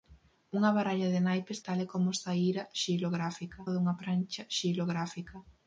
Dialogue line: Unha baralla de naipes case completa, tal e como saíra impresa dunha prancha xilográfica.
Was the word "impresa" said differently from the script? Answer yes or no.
yes